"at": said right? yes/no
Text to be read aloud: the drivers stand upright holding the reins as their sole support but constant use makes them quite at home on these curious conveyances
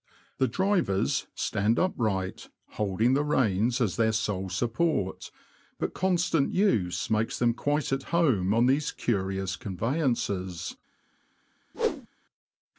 yes